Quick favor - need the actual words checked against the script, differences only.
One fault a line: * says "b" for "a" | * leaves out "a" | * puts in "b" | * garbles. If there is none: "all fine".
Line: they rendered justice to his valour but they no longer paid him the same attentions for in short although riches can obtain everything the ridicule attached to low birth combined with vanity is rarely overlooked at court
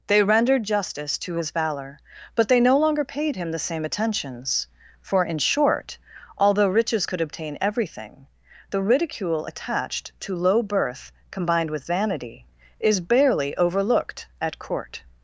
* says "could" for "can"
* says "barely" for "rarely"